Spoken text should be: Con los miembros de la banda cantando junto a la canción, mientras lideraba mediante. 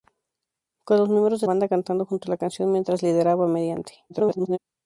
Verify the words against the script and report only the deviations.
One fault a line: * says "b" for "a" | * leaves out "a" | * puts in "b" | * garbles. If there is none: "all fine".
* leaves out "la"
* garbles